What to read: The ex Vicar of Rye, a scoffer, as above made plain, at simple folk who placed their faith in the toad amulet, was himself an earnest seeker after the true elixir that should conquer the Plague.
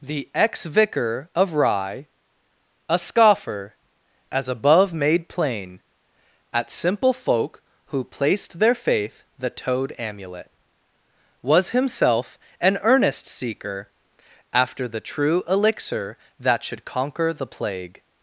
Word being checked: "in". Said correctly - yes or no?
no